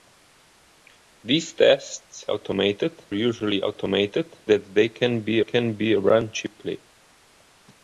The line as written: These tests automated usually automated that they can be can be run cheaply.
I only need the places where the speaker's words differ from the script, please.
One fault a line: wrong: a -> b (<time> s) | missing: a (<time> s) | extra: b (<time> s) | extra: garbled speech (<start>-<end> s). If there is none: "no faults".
no faults